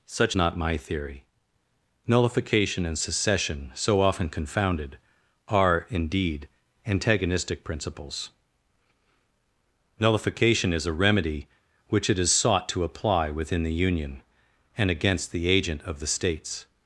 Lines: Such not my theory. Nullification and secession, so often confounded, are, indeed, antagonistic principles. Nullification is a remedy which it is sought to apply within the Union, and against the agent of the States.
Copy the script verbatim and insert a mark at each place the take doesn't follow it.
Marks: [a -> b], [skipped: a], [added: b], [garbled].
Such not my theory. Nullification and secession, so often confounded, are, indeed, antagonistic principles. Nullification is a remedy which it is sought to apply within the Union, and against the agent of the States.